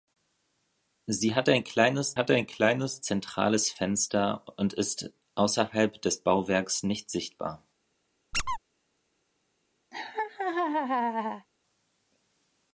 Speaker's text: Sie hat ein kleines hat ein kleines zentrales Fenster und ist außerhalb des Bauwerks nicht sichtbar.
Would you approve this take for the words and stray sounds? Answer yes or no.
no